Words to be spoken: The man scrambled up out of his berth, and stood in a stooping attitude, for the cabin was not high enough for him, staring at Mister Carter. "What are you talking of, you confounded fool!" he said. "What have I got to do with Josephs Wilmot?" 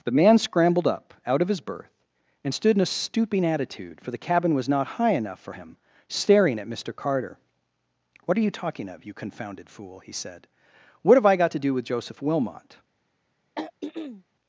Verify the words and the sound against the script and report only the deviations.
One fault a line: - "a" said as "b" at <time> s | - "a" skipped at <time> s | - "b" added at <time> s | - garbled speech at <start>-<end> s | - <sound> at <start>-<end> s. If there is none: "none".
- "Josephs" said as "Joseph" at 11.8 s
- throat clearing at 13.5-14.2 s